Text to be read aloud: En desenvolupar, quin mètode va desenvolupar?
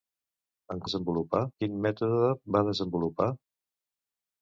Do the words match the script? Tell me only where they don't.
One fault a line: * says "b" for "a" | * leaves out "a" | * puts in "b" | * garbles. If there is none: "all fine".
all fine